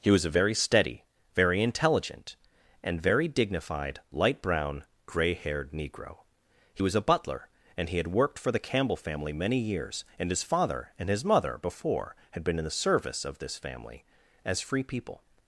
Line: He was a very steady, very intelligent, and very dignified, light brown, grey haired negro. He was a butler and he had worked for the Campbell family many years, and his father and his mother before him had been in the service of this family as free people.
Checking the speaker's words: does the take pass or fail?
fail